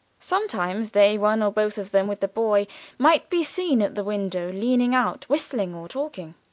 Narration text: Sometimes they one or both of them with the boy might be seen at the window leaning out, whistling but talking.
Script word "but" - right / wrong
wrong